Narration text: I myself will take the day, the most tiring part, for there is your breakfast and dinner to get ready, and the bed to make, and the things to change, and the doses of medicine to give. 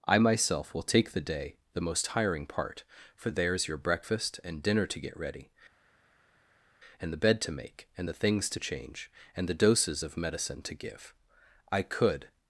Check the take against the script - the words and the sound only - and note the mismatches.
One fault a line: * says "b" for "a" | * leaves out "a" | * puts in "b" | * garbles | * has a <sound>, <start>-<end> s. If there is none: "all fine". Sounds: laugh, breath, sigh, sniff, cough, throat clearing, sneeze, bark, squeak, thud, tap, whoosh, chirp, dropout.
* puts in "I could"